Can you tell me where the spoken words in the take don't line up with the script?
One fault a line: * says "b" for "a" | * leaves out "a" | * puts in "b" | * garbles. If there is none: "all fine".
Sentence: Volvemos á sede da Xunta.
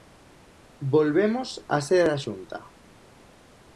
all fine